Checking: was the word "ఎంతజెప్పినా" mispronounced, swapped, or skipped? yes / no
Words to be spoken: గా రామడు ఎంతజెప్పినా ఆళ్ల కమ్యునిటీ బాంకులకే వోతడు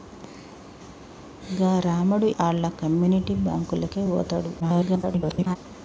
yes